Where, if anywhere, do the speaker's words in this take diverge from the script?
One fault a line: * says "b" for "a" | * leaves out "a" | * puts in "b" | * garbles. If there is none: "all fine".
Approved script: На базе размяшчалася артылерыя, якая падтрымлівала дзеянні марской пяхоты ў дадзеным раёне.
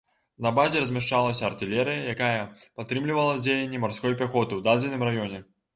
all fine